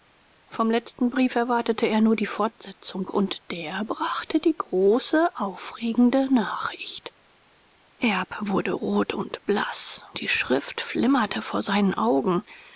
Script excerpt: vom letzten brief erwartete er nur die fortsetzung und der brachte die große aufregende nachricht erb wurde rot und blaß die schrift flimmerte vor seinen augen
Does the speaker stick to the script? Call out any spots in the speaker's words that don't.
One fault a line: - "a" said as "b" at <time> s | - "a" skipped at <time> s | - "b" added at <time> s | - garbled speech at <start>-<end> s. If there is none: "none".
none